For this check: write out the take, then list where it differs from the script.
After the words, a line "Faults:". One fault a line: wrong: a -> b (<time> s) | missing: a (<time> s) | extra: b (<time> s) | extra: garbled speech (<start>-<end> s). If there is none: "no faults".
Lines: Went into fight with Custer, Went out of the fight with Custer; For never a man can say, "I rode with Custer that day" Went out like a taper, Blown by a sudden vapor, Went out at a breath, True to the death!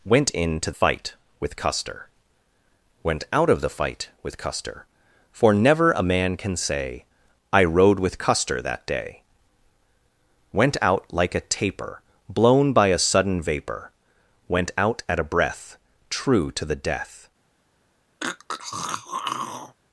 Went into fight with Custer, Went out of the fight with Custer; For never a man can say, "I rode with Custer that day" Went out like a taper, Blown by a sudden vapor, Went out at a breath, True to the death!
Faults:
no faults